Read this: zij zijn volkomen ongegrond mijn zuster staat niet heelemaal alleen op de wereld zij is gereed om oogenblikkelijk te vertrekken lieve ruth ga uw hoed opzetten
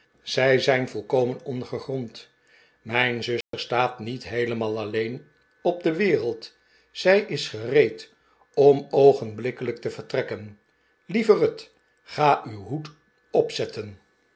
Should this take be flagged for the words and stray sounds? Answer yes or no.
yes